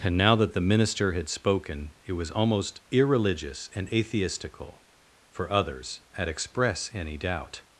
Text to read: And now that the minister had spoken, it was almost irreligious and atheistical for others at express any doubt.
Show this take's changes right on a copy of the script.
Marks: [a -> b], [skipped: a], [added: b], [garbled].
And now that the minister had spoken, it was almost irreligious and atheistical for others at express any doubt.